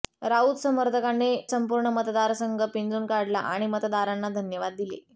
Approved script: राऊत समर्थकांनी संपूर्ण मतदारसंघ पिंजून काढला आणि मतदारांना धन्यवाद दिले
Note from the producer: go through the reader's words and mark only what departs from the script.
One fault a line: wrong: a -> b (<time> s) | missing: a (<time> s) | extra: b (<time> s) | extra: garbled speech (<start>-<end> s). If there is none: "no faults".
no faults